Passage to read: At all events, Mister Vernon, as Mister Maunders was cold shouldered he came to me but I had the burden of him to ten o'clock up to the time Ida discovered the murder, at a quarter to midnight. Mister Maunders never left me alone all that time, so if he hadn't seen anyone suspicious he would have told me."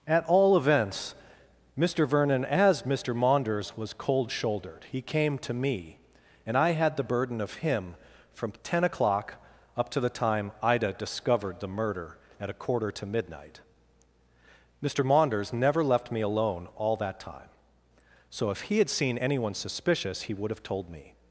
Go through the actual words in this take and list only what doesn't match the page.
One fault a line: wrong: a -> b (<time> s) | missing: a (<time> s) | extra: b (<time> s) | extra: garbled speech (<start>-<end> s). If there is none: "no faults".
wrong: but -> and (6.5 s)
wrong: to -> from (8.3 s)
wrong: hadn't -> had (18.8 s)